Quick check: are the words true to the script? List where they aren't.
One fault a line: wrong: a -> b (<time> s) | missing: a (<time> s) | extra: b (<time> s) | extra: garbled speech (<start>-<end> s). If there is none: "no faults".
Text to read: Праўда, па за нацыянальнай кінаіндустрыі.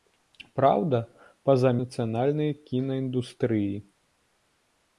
no faults